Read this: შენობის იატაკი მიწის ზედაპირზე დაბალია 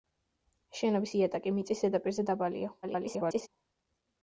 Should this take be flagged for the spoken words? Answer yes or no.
yes